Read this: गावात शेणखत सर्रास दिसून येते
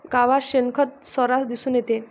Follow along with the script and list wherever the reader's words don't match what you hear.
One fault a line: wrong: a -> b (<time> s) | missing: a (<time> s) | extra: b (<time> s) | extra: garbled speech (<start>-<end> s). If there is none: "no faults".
no faults